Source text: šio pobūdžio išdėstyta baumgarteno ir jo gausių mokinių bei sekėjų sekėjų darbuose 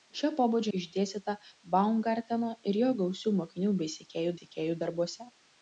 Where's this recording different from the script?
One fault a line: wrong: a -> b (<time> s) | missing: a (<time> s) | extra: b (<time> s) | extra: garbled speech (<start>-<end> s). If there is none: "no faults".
no faults